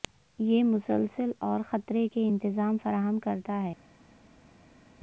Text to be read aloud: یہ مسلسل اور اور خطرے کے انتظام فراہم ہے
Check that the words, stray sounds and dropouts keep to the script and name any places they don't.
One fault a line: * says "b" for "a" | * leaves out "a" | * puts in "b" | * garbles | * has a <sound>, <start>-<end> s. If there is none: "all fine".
* leaves out "اور"
* puts in "کرتا"